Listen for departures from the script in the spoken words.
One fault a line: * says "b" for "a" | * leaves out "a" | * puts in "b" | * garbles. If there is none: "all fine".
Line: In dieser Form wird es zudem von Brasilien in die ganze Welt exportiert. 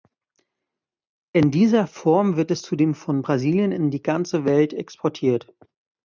all fine